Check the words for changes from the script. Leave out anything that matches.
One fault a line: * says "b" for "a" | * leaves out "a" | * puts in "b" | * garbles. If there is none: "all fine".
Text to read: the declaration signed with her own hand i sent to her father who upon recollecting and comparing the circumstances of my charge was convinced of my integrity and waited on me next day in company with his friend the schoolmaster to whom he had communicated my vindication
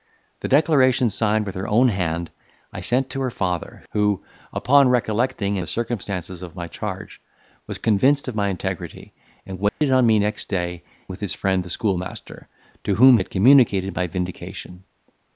* leaves out "and comparing"
* leaves out "in company"
* leaves out "he"